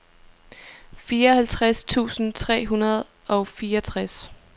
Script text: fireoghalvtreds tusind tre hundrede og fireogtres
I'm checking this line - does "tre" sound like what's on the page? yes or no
yes